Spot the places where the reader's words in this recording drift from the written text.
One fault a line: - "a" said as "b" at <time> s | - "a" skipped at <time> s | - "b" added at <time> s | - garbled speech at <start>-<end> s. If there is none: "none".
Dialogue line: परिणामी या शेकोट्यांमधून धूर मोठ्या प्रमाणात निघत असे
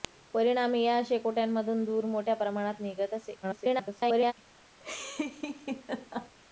- garbled speech at 3.4-4.3 s